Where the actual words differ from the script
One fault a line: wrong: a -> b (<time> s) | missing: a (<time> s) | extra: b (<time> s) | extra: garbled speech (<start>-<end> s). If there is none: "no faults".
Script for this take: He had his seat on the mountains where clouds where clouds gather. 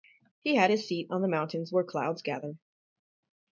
missing: where clouds (2.2 s)